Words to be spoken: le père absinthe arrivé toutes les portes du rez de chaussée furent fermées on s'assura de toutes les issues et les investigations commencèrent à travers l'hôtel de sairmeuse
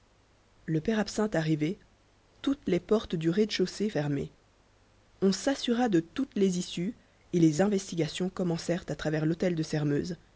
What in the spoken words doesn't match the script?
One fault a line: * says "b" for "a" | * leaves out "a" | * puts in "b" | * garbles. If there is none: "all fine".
* leaves out "furent"